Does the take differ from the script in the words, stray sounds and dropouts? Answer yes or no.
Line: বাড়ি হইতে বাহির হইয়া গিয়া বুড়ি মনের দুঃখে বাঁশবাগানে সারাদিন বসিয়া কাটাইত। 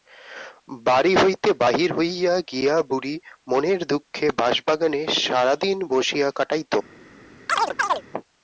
yes